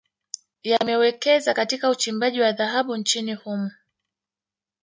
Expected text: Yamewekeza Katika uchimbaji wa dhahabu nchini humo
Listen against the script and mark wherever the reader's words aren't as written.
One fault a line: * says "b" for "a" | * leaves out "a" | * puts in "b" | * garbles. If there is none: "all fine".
all fine